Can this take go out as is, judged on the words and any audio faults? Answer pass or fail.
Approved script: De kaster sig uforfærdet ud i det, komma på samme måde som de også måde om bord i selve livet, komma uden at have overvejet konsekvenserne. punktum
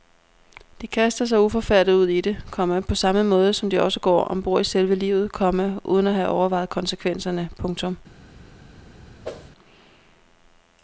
fail